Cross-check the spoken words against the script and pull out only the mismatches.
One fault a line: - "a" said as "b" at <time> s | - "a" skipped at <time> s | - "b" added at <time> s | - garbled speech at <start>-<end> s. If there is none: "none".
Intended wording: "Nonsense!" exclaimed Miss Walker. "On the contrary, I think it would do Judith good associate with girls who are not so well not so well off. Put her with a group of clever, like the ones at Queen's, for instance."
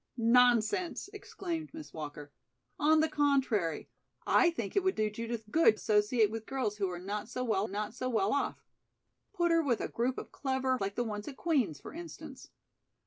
none